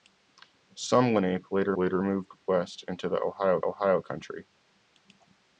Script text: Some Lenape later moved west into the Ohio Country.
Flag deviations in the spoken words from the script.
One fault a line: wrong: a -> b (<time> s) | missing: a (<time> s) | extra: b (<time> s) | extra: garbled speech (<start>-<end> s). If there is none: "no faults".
extra: later (1.8 s)
extra: Ohio (3.6 s)